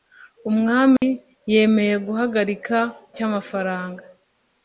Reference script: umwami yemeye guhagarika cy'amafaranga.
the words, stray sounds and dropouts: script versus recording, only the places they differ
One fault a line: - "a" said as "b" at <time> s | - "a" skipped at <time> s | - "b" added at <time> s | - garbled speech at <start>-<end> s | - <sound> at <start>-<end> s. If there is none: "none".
- dropout at 1.0-1.0 s